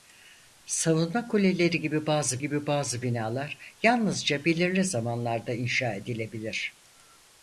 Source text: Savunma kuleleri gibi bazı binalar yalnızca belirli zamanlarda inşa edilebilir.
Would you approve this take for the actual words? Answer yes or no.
no